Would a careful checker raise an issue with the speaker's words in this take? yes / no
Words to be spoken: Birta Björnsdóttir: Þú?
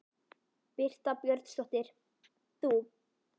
no